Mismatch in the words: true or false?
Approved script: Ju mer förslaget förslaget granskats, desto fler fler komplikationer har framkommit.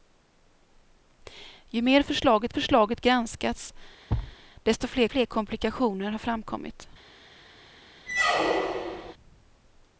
false